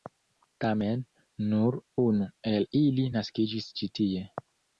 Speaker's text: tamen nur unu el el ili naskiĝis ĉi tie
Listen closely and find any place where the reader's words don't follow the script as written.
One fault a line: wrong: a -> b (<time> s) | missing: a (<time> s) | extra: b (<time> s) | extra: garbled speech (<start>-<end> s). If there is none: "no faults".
missing: el (2.7 s)